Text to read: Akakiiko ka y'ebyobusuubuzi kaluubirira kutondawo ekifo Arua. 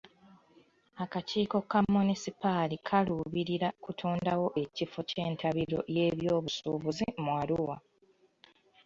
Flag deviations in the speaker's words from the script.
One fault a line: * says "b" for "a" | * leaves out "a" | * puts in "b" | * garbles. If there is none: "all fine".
* says "munisipaali" for "y'ebyobusuubuzi"
* puts in "ky'entabiro y'ebyobusuubuzi mu"